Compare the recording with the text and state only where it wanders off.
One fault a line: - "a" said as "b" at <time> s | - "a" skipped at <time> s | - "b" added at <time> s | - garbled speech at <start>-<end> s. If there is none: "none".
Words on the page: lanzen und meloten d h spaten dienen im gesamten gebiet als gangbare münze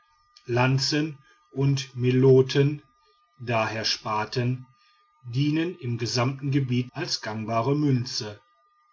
none